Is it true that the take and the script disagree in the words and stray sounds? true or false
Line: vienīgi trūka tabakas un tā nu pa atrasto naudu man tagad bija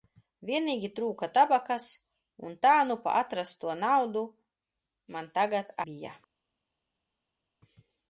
false